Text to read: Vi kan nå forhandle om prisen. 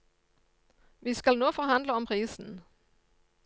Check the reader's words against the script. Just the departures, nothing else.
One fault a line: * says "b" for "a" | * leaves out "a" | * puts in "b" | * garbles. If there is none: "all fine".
* says "skal" for "kan"